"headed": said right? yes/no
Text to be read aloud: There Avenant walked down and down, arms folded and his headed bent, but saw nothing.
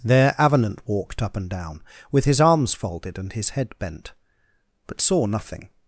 no